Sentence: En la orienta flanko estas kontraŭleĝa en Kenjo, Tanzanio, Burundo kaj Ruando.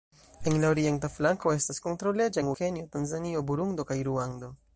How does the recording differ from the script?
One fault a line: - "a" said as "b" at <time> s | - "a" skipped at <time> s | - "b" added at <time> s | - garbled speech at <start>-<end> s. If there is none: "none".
none